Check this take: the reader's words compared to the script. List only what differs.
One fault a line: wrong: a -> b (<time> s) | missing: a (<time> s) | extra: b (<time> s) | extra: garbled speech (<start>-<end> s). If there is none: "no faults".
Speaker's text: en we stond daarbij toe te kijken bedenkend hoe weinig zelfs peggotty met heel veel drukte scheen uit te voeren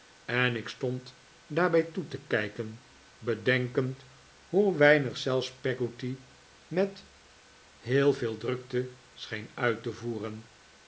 wrong: we -> ik (0.6 s)